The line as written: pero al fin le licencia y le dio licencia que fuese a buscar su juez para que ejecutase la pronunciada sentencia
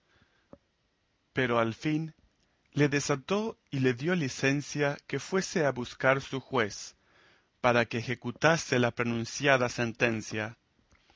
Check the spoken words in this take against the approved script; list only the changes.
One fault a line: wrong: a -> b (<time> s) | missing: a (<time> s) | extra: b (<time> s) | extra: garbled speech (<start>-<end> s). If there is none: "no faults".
wrong: licencia -> desató (2.9 s)